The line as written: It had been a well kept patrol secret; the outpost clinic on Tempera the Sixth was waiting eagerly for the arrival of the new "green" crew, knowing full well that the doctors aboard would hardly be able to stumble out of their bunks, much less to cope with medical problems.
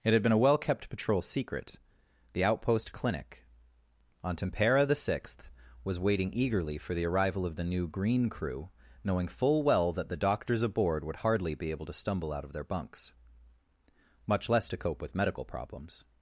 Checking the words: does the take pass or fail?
pass